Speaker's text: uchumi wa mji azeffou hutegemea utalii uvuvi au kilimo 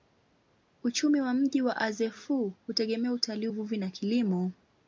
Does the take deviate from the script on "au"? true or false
true